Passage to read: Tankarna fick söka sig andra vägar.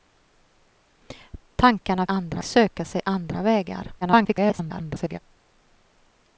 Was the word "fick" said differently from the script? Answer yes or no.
yes